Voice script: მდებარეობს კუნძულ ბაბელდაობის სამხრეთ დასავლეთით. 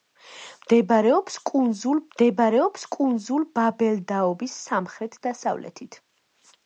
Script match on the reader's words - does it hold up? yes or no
no